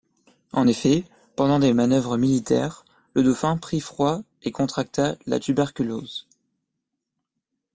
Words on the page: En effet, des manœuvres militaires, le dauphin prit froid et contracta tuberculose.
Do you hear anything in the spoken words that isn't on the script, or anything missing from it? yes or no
yes